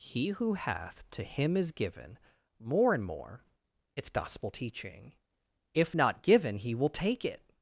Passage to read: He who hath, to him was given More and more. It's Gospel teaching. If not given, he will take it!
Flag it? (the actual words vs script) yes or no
yes